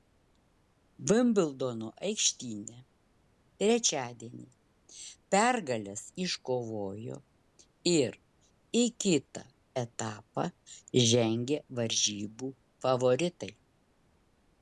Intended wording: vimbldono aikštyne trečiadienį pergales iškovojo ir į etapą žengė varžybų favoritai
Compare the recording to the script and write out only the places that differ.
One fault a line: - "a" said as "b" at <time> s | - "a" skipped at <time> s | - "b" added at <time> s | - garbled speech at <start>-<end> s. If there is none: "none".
- "kitą" added at 9.1 s